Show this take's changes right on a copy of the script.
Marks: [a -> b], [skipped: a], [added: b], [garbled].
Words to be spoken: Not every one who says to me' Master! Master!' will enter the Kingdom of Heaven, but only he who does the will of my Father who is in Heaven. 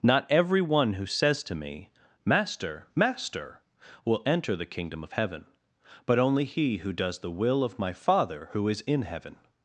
Not every one who says to me' Master! Master!' will enter the Kingdom of Heaven, but only he who does the will of my Father who is in Heaven.